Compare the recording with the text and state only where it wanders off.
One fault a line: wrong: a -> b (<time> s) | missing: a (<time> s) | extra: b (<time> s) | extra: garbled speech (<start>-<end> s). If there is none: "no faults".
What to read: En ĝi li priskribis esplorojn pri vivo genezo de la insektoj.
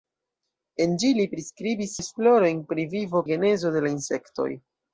no faults